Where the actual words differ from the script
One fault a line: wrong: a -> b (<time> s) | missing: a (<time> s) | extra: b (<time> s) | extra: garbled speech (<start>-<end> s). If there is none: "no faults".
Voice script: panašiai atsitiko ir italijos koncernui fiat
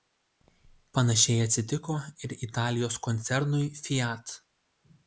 no faults